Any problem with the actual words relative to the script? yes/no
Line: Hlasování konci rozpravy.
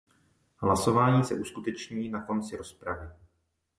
yes